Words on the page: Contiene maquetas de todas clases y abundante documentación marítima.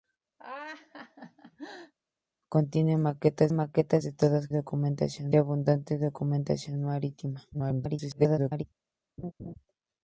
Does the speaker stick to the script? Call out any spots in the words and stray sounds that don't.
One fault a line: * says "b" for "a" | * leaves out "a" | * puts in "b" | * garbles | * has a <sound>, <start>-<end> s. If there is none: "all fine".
* has a laugh, 0.4-1.9 s
* puts in "maquetas"
* says "documentación" for "clases"
* garbles
* has a laugh, 9.2-9.5 s